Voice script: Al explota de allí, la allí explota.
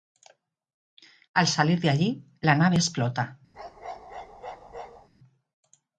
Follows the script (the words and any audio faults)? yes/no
no